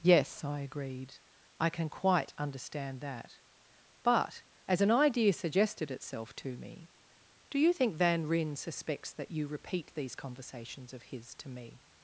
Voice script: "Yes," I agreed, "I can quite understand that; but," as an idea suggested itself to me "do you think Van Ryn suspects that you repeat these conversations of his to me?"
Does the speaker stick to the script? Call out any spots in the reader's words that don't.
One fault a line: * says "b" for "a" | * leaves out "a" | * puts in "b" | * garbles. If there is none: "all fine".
all fine